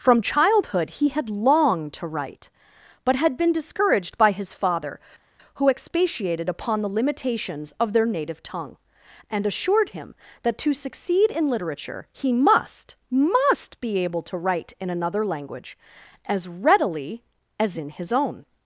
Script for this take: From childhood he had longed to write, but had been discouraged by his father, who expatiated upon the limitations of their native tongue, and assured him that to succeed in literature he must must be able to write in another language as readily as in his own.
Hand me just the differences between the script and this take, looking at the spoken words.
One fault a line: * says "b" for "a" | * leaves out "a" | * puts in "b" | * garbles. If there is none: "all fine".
all fine